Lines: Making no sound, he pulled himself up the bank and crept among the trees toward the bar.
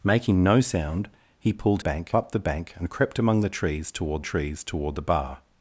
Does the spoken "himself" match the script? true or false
false